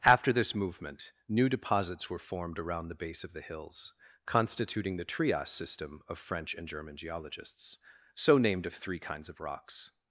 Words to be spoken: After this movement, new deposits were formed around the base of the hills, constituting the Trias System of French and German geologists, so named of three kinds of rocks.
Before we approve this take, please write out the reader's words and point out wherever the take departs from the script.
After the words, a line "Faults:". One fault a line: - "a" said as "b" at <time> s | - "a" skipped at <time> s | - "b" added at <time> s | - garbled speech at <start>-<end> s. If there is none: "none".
After this movement, new deposits were formed around the base of the hills, constituting the Trias System of French and German geologists, so named of three kinds of rocks.
Faults:
none